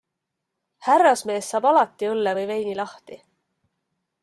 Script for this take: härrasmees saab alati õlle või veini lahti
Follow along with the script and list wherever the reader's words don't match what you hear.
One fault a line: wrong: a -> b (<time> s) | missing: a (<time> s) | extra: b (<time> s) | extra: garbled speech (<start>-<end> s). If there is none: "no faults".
no faults